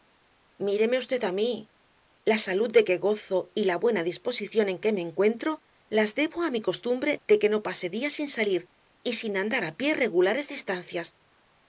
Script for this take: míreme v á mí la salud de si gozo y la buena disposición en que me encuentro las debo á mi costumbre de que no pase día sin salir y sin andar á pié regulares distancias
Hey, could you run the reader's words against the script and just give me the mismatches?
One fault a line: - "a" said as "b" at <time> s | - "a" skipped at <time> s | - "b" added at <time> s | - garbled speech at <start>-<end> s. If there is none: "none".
- "si" said as "que" at 2.9 s